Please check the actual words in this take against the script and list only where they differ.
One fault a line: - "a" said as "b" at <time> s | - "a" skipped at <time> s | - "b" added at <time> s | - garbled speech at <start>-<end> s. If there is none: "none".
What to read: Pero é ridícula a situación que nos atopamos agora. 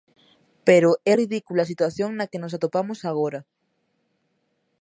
- "na" added at 2.1 s